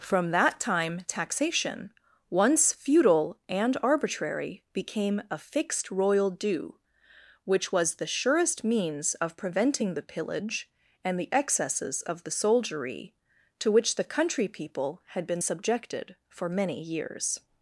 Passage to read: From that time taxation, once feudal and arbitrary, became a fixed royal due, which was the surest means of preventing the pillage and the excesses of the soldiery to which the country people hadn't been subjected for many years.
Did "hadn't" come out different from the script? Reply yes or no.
yes